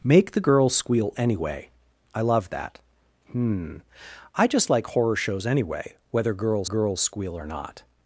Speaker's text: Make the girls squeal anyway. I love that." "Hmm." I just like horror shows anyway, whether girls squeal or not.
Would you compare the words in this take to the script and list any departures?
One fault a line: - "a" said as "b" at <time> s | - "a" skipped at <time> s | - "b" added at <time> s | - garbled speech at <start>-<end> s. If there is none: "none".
- "girls" added at 6.6 s